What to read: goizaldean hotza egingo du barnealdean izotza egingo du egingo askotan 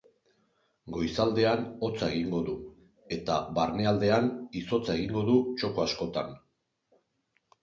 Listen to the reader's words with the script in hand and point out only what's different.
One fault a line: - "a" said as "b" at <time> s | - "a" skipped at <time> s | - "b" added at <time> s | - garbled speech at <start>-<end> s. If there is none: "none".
- "eta" added at 3.2 s
- "egingo" said as "txoko" at 5.6 s